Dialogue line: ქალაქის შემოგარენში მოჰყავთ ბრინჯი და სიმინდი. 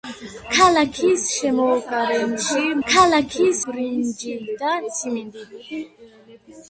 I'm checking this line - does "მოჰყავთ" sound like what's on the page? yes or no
no